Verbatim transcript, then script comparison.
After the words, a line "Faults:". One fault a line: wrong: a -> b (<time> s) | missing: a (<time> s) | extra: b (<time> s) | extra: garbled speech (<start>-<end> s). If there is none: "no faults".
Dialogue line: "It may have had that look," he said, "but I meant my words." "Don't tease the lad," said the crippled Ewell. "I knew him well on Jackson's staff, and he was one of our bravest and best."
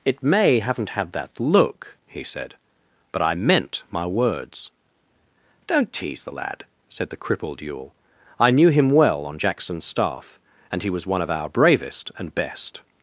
"It may haven't had that look," he said, "but I meant my words." "Don't tease the lad," said the crippled Ewell. "I knew him well on Jackson's staff, and he was one of our bravest and best."
Faults:
wrong: have -> haven't (0.6 s)